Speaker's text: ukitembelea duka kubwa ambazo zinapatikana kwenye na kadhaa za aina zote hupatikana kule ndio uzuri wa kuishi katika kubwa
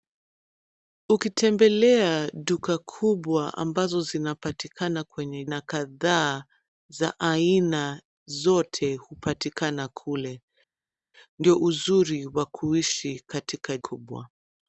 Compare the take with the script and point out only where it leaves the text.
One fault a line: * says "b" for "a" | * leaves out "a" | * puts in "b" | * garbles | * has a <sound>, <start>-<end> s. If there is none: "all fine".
all fine